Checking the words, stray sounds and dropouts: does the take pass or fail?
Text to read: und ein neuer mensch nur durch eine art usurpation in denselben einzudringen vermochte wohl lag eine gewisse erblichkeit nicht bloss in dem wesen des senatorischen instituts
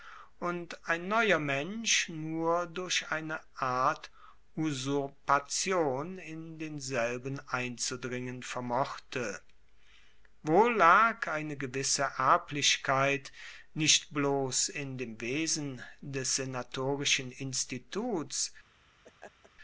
fail